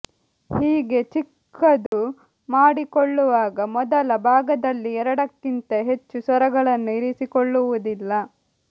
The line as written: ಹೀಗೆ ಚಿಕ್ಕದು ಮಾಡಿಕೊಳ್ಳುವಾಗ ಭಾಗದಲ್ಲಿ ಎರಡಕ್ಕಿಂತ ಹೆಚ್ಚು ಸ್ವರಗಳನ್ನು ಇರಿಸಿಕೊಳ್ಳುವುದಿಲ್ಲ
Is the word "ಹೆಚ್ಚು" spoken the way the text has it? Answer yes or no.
yes